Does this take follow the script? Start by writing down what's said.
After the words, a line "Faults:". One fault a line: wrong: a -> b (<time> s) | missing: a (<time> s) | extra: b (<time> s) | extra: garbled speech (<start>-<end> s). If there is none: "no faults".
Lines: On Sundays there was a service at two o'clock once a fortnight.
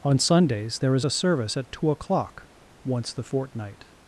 On Sundays there is a service at two o'clock once the fortnight.
Faults:
wrong: was -> is (0.9 s)
wrong: a -> the (3.1 s)